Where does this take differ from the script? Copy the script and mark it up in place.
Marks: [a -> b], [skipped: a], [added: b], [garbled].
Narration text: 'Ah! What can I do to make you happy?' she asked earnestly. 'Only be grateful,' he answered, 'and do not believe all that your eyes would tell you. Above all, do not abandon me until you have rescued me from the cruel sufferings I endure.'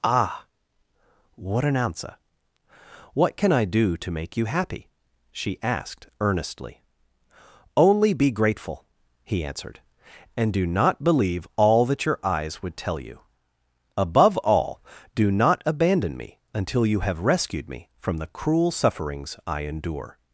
'Ah! What [added: an answer what] can I do to make you happy?' she asked earnestly. 'Only be grateful,' he answered, 'and do not believe all that your eyes would tell you. Above all, do not abandon me until you have rescued me from the cruel sufferings I endure.'